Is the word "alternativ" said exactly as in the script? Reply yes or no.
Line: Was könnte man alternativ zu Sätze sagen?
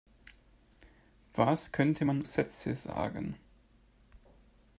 no